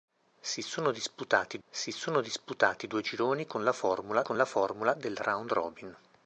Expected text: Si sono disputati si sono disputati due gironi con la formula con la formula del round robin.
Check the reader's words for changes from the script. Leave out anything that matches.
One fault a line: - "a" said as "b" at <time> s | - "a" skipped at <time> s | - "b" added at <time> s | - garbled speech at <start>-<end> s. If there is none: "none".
none